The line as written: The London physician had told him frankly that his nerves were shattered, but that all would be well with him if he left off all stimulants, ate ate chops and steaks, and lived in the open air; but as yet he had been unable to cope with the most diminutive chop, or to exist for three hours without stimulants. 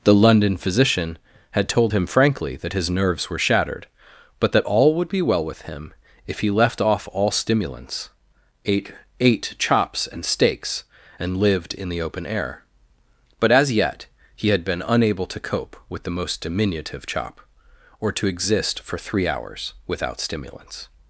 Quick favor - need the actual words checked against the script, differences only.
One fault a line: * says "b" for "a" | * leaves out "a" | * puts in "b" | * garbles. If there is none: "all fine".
all fine